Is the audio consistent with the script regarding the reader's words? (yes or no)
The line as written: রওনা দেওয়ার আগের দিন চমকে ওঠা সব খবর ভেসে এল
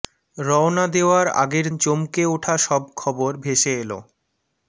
no